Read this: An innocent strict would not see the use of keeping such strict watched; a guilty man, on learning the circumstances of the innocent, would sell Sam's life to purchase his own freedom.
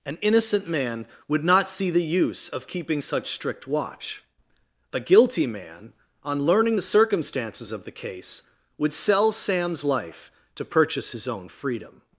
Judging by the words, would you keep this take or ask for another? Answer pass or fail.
fail